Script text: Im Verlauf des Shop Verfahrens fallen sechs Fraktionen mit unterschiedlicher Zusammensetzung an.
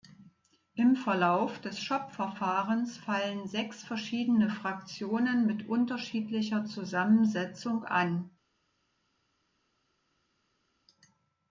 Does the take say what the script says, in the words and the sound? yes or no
no